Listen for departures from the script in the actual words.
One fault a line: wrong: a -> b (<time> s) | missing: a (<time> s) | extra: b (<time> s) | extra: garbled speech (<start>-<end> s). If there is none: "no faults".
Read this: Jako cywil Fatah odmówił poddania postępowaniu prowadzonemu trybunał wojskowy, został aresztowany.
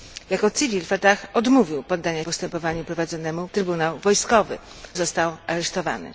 no faults